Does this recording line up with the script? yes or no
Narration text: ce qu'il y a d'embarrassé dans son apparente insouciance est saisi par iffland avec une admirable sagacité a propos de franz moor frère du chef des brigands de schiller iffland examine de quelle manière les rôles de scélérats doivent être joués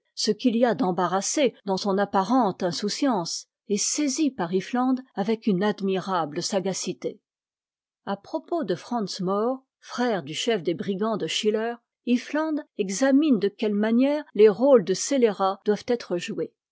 yes